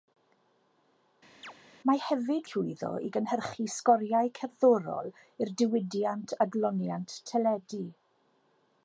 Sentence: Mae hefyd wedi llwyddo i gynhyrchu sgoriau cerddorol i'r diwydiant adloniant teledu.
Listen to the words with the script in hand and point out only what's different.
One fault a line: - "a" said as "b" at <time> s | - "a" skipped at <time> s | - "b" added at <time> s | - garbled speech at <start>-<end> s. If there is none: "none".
- "wedi" skipped at 2.5 s